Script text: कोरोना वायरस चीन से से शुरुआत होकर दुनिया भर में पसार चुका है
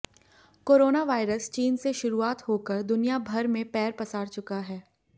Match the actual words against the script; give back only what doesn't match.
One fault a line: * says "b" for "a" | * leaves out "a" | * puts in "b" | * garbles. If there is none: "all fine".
* leaves out "से"
* puts in "पैर"